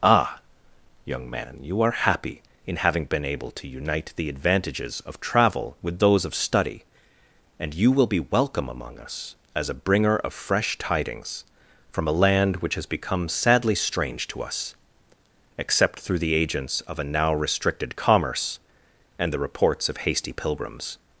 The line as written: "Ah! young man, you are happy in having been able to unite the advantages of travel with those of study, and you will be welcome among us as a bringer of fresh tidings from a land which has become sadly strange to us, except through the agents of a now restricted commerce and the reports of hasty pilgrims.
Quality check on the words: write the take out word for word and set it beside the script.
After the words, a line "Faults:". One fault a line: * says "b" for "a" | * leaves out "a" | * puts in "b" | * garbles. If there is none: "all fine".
"Ah! young man, you are happy in having been able to unite the advantages of travel with those of study, and you will be welcome among us as a bringer of fresh tidings from a land which has become sadly strange to us, except through the agents of a now restricted commerce and the reports of hasty pilgrims.
Faults:
all fine